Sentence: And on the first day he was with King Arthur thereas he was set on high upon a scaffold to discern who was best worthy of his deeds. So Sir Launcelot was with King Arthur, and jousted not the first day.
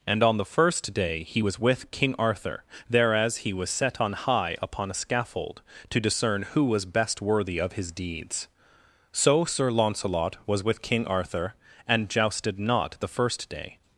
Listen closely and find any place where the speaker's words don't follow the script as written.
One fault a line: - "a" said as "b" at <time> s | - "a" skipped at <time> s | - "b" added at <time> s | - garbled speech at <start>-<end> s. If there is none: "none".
none